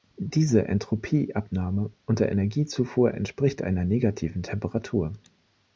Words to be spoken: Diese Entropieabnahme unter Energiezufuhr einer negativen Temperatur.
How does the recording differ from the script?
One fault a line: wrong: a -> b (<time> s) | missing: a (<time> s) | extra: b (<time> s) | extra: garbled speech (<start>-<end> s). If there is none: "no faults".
extra: entspricht (3.1 s)